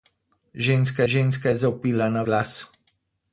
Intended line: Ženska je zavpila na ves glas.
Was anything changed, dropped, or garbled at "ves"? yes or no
yes